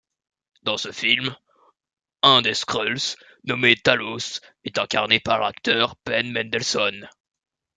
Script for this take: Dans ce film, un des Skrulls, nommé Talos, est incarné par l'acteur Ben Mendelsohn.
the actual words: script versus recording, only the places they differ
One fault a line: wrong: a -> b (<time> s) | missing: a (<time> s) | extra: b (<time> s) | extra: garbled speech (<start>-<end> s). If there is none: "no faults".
no faults